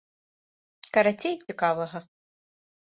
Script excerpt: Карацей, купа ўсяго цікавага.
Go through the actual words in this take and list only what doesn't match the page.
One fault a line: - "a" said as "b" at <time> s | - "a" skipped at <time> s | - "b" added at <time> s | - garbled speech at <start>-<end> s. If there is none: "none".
- "купа ўсяго" skipped at 1.4 s